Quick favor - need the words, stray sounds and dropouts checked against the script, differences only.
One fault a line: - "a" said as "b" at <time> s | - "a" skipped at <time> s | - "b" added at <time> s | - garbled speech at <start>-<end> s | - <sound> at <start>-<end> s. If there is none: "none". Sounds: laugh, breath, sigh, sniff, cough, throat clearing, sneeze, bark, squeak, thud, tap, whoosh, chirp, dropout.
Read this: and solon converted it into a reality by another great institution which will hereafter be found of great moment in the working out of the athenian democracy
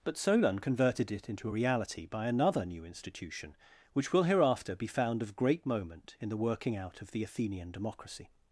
- "and" said as "but" at 0.0 s
- "great" said as "new" at 2.7 s